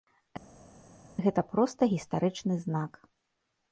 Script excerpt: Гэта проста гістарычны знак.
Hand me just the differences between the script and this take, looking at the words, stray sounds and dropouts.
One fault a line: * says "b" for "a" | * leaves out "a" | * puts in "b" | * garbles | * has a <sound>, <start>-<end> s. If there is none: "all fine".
all fine